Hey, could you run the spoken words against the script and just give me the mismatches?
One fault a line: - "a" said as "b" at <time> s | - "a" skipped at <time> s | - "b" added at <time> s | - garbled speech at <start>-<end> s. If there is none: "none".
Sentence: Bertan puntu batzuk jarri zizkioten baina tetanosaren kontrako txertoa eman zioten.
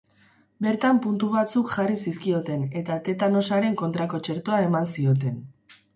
- "baina" said as "eta" at 2.8 s